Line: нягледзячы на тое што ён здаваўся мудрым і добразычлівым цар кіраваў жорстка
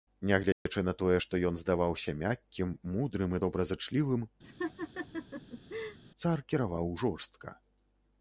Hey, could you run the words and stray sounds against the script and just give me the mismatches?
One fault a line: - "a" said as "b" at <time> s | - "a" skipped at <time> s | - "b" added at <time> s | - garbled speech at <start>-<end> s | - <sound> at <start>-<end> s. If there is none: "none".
- dropout at 0.5-0.7 s
- "мяккім" added at 2.2 s
- laugh at 4.4-6.0 s